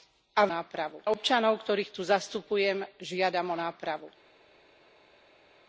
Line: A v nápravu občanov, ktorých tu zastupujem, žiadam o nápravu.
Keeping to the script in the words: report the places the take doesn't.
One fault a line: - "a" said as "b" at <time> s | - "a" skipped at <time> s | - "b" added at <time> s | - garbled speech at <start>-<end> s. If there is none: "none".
none